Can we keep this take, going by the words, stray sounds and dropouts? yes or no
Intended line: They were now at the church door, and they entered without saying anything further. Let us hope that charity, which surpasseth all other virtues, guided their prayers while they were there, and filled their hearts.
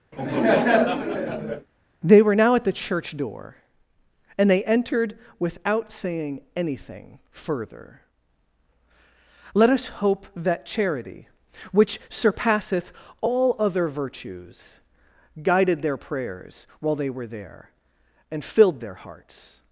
no